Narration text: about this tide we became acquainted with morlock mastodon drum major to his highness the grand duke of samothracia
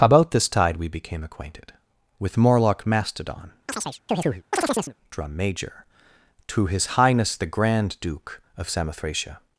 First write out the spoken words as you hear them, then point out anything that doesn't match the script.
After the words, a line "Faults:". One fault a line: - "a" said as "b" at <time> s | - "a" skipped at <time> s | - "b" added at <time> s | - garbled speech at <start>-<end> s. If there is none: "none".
about this tide we became acquainted with morlock mastodon drum major to his highness the grand duke of samothracia
Faults:
none